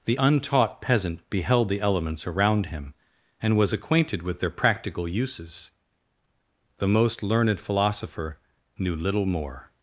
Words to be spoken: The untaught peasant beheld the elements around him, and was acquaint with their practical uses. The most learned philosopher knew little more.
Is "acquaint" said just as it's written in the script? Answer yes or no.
no